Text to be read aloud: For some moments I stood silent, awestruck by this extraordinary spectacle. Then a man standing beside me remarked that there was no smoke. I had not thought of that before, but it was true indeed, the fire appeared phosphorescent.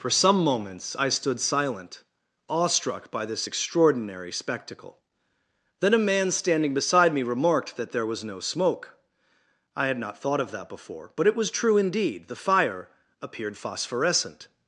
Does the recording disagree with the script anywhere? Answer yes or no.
no